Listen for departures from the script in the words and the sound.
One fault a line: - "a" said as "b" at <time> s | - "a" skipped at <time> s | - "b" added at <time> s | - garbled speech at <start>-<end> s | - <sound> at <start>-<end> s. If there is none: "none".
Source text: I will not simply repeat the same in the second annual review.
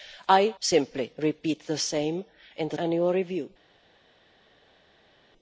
- "will not" skipped at 0.6 s
- "second" skipped at 2.8 s